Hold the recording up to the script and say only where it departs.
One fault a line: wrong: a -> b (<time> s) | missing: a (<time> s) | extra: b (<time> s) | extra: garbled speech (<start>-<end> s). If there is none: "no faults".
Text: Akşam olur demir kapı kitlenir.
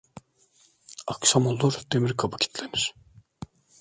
no faults